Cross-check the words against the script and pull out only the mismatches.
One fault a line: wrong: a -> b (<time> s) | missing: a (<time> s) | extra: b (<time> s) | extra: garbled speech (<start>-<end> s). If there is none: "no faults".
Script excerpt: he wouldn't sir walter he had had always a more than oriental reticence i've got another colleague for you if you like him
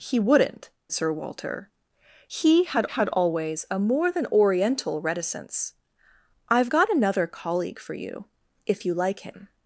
no faults